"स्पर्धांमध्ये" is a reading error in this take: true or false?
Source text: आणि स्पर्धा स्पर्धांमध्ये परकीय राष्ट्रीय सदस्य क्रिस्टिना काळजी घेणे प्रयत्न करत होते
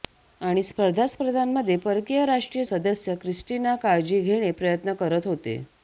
false